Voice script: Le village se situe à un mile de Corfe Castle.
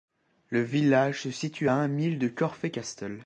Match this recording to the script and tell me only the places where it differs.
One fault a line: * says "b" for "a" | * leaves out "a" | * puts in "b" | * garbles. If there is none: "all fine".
all fine